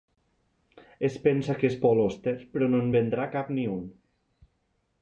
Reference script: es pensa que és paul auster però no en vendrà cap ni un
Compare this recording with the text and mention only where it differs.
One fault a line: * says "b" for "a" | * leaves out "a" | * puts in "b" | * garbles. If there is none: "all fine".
all fine